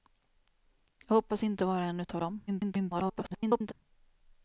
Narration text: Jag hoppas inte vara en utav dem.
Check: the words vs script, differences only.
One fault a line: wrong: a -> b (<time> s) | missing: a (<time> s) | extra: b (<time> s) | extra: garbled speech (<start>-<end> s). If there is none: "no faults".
extra: garbled speech (2.5-3.7 s)